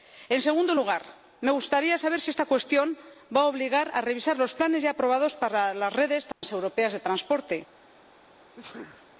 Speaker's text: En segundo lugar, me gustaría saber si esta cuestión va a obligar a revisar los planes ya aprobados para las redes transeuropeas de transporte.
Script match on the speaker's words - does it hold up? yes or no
yes